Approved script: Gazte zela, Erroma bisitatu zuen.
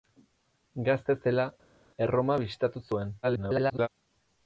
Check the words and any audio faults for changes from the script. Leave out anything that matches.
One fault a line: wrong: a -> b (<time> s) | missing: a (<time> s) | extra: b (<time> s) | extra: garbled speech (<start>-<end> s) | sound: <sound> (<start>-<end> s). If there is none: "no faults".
extra: garbled speech (3.2-3.9 s)